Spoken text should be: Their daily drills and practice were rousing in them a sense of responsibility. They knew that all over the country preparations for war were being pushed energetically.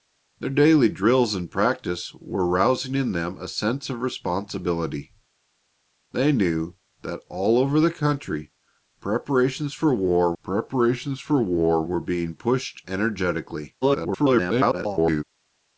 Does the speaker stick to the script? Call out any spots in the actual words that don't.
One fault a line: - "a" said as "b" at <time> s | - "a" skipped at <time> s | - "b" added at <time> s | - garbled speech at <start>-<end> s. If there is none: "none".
- "preparations for war" added at 10.4 s
- garbled speech at 13.8-15.2 s